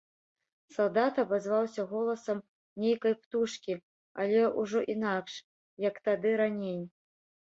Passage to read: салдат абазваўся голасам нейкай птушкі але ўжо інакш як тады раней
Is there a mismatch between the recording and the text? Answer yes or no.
no